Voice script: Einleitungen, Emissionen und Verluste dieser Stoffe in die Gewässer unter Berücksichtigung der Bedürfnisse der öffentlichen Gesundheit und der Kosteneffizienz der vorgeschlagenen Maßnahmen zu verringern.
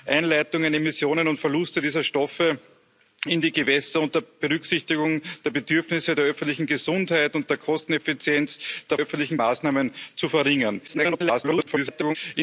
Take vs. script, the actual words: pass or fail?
fail